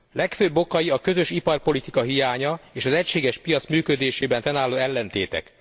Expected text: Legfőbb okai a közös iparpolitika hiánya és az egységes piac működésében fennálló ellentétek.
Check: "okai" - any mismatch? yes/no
no